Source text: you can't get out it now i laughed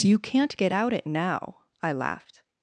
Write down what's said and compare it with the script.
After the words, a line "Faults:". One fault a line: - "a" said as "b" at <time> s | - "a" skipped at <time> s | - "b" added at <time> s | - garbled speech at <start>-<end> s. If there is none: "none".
you can't get out it now i laughed
Faults:
none